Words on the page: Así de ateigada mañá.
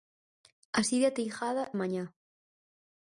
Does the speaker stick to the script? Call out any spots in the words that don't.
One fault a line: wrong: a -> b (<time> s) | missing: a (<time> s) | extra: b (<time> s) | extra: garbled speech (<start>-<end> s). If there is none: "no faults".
no faults